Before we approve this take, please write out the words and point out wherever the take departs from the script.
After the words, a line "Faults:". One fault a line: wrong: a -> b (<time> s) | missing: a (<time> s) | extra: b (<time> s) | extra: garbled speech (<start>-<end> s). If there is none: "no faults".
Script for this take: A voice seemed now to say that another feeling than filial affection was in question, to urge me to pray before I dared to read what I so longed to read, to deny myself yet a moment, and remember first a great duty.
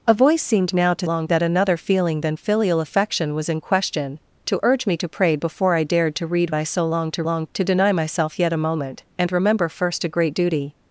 A voice seemed now to longed that another feeling than filial affection was in question, to urge me to pray before I dared to read I so longed to longed, to deny myself yet a moment, and remember first a great duty.
Faults:
wrong: say -> longed (1.0 s)
missing: what (6.5 s)
wrong: read -> longed (7.2 s)